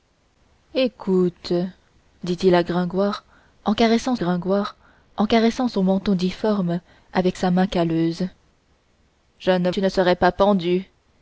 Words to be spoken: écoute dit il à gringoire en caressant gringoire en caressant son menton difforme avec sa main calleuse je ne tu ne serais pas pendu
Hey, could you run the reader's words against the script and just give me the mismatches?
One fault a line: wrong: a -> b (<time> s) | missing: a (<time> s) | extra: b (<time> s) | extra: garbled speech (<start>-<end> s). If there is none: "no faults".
no faults